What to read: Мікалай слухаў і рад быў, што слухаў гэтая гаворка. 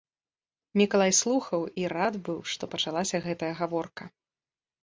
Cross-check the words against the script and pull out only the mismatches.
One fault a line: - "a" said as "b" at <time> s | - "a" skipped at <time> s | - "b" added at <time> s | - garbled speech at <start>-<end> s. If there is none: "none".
- "слухаў" said as "пачалася" at 2.8 s